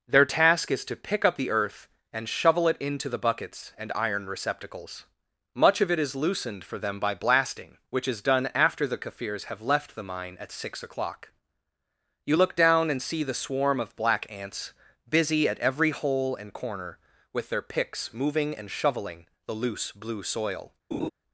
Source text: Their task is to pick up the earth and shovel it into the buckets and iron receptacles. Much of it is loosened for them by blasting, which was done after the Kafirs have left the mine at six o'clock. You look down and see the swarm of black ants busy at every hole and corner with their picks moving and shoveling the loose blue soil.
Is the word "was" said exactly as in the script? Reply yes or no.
no